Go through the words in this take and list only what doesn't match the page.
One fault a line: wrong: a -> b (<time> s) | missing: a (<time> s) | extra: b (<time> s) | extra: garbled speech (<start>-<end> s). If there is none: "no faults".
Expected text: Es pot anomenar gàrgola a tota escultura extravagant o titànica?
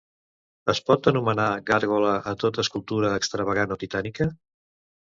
no faults